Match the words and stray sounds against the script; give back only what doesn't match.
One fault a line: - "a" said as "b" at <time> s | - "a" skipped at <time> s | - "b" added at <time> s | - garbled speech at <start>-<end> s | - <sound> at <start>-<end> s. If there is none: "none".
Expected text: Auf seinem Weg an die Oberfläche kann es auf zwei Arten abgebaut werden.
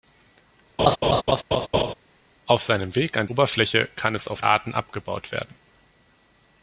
- laugh at 0.8-1.9 s
- "die" skipped at 3.3 s
- "zwei" skipped at 4.4 s